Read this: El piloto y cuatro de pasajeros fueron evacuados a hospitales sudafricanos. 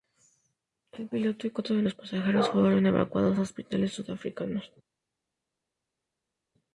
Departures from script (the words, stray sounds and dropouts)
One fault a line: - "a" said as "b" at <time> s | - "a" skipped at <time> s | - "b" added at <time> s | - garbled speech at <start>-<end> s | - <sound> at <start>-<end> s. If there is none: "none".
- "los" added at 1.8 s